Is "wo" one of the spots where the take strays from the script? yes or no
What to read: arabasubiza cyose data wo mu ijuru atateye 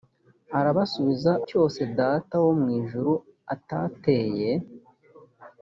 no